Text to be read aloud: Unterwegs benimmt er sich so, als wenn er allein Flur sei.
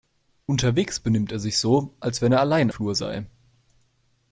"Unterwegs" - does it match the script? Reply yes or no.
yes